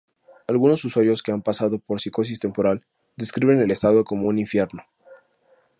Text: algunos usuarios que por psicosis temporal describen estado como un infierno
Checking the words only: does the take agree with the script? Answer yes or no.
no